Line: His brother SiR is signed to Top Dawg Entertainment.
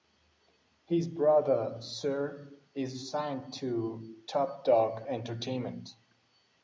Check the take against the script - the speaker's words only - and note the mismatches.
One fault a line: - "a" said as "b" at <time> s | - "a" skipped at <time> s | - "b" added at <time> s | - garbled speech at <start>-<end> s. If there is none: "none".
none